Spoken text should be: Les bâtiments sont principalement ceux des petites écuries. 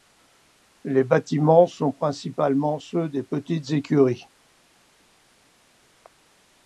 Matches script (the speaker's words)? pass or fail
pass